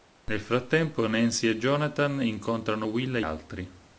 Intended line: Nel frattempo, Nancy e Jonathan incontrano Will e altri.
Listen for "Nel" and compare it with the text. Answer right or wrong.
right